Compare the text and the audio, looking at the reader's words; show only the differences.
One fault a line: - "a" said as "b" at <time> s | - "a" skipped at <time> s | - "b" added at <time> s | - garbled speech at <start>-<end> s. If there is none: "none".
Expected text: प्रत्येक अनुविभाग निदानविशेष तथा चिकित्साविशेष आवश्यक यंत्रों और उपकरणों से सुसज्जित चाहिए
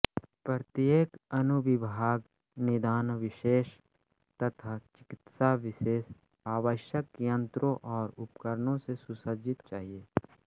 none